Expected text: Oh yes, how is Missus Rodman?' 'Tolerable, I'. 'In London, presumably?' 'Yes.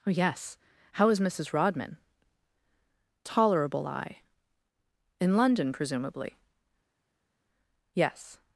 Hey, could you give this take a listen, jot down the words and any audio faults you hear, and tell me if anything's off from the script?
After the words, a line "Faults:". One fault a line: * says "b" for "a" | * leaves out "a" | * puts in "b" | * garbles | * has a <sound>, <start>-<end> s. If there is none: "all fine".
Oh yes, how is Missus Rodman?' 'Tolerable, I'. 'In London, presumably?' 'Yes.
Faults:
all fine